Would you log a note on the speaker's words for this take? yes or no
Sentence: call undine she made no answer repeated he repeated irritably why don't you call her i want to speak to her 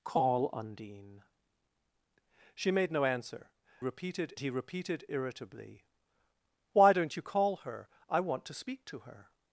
no